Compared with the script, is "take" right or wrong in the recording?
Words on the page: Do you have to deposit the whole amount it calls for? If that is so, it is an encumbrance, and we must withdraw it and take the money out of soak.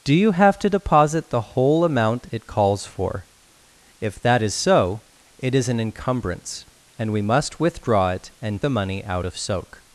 wrong